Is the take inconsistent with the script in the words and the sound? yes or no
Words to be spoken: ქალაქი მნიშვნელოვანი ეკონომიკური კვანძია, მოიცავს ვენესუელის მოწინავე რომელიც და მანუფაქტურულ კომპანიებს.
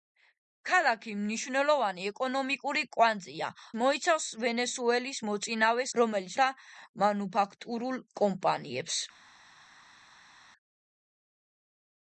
no